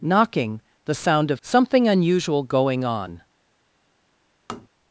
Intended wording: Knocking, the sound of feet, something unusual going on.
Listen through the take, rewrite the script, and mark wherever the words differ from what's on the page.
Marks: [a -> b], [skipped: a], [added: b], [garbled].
Knocking, the sound of [skipped: feet,] something unusual going on.